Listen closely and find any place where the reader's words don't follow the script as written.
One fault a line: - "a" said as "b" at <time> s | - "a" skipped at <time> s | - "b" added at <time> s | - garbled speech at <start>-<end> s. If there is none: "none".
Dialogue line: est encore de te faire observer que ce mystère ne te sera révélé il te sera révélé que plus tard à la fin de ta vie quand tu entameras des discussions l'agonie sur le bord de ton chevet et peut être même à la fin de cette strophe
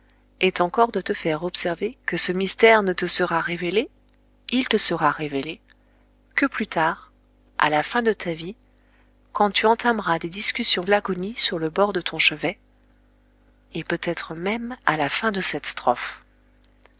none